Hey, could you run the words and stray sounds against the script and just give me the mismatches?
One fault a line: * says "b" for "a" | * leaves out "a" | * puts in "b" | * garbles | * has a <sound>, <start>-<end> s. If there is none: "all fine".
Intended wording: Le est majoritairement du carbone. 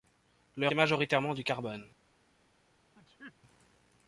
* has a sneeze, 2.9-3.3 s